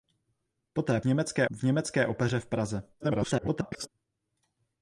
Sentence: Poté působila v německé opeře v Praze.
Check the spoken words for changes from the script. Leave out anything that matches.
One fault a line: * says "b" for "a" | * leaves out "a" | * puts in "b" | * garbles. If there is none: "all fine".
* says "německé" for "působila"
* garbles